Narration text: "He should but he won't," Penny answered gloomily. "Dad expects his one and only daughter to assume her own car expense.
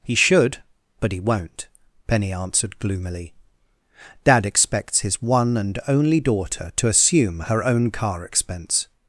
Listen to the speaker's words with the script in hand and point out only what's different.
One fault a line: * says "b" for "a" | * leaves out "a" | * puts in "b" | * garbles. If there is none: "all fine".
all fine